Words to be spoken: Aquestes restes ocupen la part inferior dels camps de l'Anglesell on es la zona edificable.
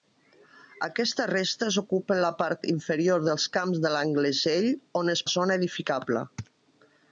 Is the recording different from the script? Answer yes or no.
no